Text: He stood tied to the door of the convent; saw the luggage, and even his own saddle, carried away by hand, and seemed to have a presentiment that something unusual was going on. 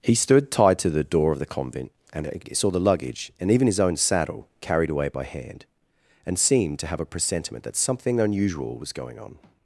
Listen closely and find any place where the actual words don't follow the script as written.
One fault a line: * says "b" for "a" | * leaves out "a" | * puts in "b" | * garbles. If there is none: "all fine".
* puts in "and"